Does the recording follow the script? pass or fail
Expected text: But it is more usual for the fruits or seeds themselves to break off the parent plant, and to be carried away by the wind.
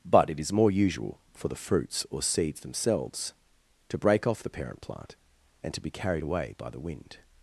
pass